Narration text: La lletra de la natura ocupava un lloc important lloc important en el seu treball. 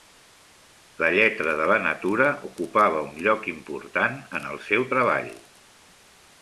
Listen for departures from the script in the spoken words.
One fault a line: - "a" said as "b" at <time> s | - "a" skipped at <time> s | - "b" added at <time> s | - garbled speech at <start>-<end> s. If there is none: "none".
- "lloc important" skipped at 4.2 s